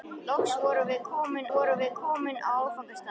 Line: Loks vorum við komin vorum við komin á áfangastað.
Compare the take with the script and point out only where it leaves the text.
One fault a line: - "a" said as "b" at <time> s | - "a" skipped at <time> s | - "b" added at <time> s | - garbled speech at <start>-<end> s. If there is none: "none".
none